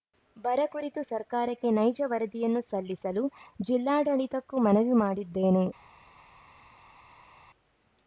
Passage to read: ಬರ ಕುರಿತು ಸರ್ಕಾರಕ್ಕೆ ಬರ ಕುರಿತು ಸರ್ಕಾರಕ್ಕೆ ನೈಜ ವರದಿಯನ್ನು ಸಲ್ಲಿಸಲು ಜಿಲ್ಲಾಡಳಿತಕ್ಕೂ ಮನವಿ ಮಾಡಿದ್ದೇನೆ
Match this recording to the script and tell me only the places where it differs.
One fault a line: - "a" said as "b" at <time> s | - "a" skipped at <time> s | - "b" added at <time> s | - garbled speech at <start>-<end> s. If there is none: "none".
- "ಬರ ಕುರಿತು ಸರ್ಕಾರಕ್ಕೆ" skipped at 1.7 s